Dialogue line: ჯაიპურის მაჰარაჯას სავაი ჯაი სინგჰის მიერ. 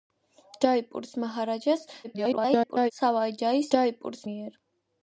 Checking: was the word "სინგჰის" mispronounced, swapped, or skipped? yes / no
yes